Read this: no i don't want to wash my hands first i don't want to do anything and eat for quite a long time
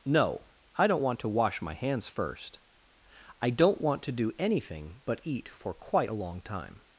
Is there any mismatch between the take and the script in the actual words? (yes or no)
yes